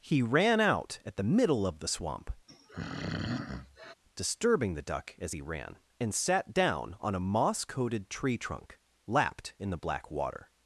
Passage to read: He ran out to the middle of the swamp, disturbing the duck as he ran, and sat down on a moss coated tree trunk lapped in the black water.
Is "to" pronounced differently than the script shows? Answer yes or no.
yes